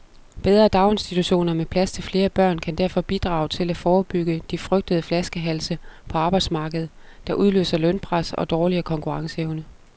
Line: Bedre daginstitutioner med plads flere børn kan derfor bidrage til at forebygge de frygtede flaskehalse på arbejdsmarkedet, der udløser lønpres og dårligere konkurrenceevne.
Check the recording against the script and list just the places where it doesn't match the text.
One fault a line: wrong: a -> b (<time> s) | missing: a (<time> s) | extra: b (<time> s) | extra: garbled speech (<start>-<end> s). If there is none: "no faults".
extra: til (1.9 s)